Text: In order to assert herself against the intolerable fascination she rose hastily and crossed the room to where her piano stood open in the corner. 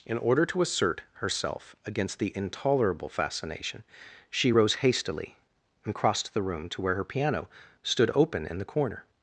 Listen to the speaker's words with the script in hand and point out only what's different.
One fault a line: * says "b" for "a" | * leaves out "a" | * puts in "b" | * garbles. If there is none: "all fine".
all fine